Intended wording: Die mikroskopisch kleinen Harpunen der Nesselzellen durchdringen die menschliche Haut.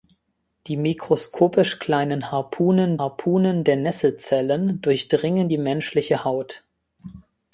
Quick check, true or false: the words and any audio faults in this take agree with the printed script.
false